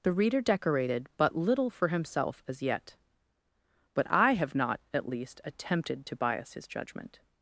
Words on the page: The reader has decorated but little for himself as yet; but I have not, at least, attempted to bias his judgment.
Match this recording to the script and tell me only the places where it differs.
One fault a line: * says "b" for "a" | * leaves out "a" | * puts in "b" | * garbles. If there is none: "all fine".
* leaves out "has"